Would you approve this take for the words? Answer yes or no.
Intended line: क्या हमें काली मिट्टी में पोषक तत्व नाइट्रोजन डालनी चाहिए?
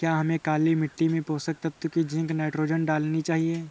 no